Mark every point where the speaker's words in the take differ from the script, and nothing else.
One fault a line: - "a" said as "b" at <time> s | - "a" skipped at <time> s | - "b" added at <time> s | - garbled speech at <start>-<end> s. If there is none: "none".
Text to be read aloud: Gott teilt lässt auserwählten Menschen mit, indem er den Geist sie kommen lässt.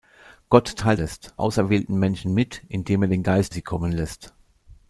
none